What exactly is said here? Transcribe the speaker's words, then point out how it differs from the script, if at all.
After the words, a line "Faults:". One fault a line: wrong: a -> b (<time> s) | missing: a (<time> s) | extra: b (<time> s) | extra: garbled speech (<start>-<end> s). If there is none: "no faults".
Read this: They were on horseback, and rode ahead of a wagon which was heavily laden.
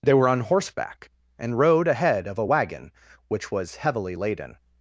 They were on horseback, and rode ahead of a wagon which was heavily laden.
Faults:
no faults